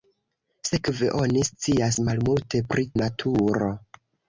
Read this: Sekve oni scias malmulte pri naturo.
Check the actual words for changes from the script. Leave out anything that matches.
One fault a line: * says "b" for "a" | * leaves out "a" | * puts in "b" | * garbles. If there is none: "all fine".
all fine